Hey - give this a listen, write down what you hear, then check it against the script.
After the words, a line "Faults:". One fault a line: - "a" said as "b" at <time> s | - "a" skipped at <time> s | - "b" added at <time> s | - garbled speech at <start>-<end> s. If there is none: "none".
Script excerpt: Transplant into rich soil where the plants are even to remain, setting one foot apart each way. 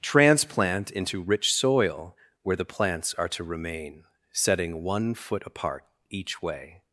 Transplant into rich soil where the plants are to remain, setting one foot apart each way.
Faults:
- "even" skipped at 3.3 s